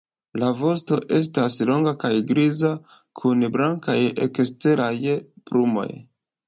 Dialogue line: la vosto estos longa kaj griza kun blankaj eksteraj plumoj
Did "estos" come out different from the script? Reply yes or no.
yes